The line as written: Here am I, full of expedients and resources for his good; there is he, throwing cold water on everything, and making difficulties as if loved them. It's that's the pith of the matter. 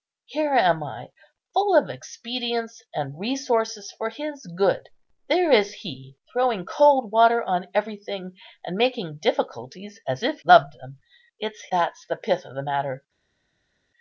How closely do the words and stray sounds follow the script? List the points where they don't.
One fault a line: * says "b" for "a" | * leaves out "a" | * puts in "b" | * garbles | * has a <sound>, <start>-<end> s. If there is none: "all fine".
all fine